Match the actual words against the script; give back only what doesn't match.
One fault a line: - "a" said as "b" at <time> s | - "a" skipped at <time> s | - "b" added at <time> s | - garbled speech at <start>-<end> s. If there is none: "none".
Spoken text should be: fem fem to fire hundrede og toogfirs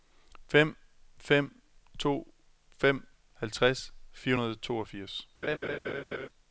- "fem halvtreds" added at 2.8 s